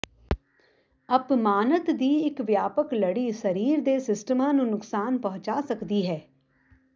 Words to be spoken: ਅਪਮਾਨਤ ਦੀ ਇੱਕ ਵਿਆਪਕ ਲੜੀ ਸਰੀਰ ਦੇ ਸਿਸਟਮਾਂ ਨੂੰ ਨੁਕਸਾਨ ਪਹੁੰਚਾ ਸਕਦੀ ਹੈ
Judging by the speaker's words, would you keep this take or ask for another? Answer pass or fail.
pass